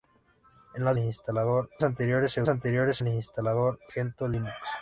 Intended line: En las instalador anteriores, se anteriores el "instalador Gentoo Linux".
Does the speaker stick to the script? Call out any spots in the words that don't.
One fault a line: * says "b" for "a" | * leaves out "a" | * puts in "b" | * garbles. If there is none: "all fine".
all fine